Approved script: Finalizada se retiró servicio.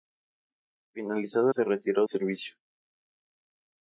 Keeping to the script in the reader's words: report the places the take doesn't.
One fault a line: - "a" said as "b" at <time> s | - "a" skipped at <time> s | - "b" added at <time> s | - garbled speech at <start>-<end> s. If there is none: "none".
none